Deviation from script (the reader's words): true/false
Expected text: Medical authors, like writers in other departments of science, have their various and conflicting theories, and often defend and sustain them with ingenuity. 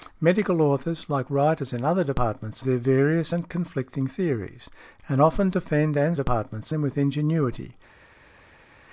true